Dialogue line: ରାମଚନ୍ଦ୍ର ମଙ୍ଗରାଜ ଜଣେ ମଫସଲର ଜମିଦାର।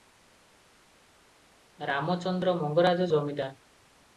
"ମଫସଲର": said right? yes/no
no